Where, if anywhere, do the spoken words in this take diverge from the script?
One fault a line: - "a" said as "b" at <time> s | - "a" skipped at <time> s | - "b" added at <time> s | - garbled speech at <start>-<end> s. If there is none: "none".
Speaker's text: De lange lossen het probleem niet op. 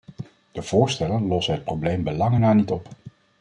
- "lange" said as "voorstellen" at 0.6 s
- "bij lange na" added at 2.0 s